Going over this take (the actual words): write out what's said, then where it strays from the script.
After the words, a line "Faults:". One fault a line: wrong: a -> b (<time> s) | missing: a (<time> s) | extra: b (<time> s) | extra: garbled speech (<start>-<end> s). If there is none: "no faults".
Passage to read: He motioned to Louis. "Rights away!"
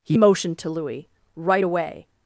He motioned to Louis. "Right away!"
Faults:
wrong: Rights -> Right (1.3 s)